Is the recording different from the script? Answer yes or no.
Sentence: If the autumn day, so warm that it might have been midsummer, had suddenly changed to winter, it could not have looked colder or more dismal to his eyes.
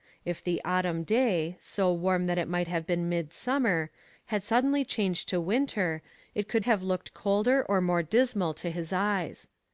yes